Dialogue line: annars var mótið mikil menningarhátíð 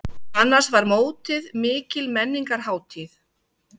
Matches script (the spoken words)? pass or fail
pass